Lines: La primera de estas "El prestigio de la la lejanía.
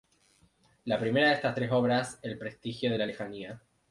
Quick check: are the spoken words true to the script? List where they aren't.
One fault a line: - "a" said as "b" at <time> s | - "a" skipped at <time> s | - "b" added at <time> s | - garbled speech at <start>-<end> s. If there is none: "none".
- "tres obras" added at 1.5 s
- "la" skipped at 3.1 s